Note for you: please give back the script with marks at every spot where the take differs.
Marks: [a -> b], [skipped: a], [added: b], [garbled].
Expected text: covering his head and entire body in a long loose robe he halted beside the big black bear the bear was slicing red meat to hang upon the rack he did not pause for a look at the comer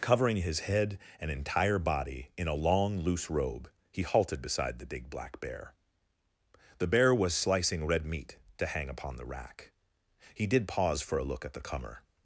covering his head and entire body in a long loose robe he halted beside the big black bear the bear was slicing red meat to hang upon the rack he did [skipped: not] pause for a look at the comer